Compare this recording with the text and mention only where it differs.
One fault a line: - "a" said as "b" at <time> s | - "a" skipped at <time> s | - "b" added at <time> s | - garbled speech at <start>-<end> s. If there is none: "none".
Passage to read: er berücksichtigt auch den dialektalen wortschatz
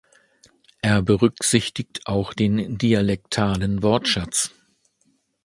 none